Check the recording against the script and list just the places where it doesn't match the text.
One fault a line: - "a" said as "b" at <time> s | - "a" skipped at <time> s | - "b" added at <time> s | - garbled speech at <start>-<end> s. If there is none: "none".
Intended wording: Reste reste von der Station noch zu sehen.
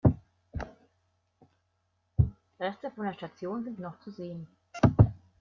- "reste" skipped at 2.9 s
- "sind" added at 3.6 s